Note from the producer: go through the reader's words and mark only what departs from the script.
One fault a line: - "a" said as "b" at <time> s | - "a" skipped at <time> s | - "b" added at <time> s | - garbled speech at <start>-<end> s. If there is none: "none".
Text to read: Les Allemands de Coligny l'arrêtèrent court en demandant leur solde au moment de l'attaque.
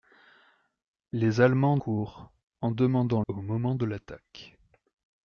- "de Coligny l'arrêtèrent" skipped at 1.8 s
- "leur solde" skipped at 3.2 s